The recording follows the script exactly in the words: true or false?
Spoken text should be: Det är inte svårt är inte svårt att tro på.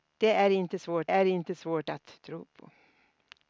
true